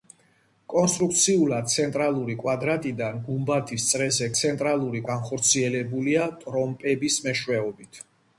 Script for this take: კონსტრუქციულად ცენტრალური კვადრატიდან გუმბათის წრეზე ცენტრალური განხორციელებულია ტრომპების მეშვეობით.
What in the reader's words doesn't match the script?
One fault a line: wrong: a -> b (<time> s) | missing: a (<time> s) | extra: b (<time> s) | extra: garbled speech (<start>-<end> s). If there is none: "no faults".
no faults